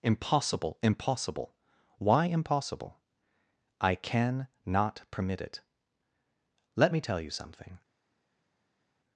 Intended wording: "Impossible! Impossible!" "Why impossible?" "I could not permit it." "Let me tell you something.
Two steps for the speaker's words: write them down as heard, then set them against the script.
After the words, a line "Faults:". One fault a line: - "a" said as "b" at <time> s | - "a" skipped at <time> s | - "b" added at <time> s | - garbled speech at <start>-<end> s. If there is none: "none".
"Impossible! Impossible!" "Why impossible?" "I can not permit it." "Let me tell you something.
Faults:
- "could" said as "can" at 3.9 s